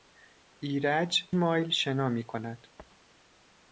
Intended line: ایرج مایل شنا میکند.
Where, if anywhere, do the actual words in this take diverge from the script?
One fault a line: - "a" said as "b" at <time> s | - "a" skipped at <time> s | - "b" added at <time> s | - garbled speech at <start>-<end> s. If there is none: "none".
none